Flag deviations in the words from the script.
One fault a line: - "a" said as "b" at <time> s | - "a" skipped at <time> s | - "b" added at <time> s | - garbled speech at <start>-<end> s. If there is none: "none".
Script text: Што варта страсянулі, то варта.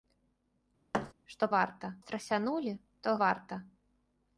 none